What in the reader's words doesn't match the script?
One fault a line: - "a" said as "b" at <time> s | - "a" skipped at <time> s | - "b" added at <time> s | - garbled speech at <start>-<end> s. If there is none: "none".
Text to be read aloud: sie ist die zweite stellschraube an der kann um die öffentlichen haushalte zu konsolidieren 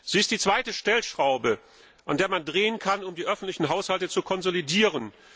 - "man drehen" added at 2.3 s